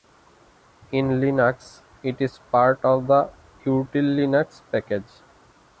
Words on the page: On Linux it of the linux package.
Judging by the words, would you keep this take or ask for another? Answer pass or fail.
fail